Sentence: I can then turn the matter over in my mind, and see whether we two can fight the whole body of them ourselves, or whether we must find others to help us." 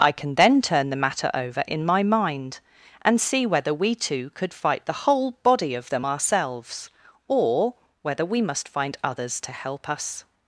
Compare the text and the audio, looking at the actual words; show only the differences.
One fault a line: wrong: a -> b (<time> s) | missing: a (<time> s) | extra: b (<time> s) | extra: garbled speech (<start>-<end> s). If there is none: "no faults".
wrong: can -> could (4.3 s)